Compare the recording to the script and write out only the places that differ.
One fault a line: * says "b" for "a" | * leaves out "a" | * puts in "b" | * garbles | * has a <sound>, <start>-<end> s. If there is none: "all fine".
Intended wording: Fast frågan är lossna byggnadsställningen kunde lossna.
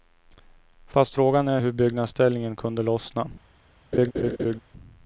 * says "hur" for "lossna"
* has a laugh, 3.9-4.6 s